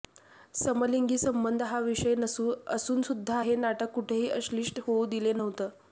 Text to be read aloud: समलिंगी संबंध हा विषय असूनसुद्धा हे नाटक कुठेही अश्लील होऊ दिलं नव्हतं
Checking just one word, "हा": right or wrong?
right